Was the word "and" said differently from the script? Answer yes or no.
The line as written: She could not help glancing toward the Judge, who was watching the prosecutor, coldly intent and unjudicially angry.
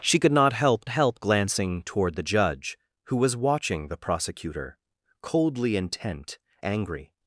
yes